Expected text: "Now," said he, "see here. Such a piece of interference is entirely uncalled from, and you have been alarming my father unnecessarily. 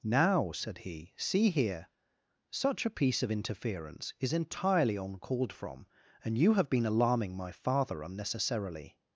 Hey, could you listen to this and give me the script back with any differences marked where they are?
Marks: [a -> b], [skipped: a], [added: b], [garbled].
"Now," said he, "see here. Such a piece of interference is entirely uncalled from, and you have been alarming my father unnecessarily.